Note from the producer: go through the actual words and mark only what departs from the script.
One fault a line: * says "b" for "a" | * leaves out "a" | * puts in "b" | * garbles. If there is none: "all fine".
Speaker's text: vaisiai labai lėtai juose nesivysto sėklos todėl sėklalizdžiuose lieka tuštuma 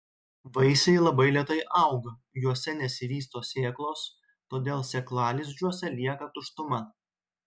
* puts in "auga"